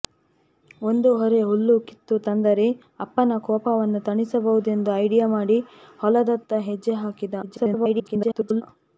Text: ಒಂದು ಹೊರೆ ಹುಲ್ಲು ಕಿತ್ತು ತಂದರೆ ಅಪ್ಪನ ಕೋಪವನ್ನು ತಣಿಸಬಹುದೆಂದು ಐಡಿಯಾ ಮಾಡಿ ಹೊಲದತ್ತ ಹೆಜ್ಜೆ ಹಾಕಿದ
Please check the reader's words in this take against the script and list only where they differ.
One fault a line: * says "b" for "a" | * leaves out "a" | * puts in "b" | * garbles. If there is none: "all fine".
* garbles